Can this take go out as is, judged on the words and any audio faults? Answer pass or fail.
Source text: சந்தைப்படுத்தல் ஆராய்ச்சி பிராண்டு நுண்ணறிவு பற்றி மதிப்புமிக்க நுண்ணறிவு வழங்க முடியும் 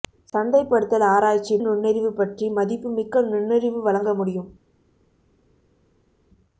fail